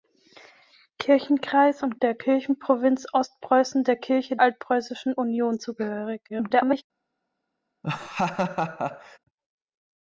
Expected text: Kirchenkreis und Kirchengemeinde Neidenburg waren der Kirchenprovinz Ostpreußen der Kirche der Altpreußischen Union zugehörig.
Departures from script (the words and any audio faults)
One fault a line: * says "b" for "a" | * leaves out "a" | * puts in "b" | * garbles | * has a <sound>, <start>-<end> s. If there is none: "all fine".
* leaves out "Kirchengemeinde Neidenburg waren"
* leaves out "der"
* garbles
* has a laugh, 7.8-9.2 s